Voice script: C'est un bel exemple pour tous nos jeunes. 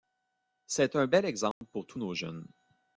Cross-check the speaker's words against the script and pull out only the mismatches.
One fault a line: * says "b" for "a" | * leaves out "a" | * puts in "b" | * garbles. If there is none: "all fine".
all fine